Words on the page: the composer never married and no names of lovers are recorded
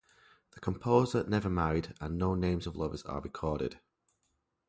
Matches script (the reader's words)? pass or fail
pass